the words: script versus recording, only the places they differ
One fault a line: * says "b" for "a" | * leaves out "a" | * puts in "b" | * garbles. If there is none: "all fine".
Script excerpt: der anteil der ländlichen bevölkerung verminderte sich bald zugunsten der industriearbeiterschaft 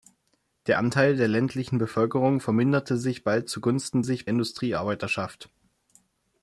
* says "sich" for "der"